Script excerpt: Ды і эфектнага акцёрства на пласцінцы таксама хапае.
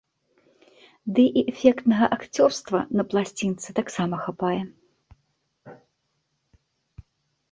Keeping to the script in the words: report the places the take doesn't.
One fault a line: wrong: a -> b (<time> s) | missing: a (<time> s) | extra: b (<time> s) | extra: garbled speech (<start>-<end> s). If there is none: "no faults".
no faults